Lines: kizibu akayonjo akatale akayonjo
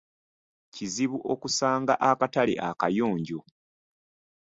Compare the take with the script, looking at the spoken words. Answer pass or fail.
fail